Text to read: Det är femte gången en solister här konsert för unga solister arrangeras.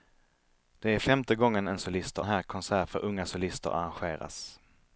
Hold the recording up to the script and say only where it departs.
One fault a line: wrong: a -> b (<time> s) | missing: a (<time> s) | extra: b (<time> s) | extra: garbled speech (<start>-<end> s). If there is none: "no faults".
no faults